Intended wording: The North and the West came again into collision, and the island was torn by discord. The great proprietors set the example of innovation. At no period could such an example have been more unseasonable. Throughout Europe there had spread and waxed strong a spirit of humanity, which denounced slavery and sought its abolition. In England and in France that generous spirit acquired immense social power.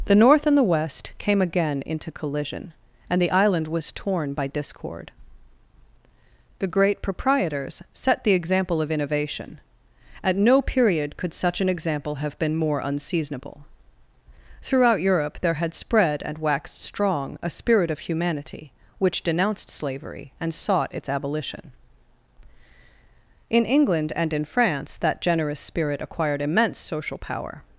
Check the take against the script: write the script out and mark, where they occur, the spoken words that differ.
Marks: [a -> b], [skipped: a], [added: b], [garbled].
The North and the West came again into collision, and the island was torn by discord. The great proprietors set the example of innovation. At no period could such an example have been more unseasonable. Throughout Europe there had spread and waxed strong a spirit of humanity, which denounced slavery and sought its abolition. In England and in France that generous spirit acquired immense social power.